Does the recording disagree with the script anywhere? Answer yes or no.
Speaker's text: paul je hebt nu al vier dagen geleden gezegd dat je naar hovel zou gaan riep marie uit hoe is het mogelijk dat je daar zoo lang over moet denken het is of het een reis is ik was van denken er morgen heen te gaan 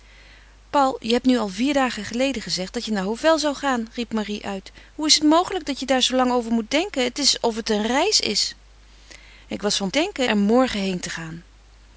no